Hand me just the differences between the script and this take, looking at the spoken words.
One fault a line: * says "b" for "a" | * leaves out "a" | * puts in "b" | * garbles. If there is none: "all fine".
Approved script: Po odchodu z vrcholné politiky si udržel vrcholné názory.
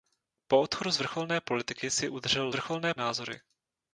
all fine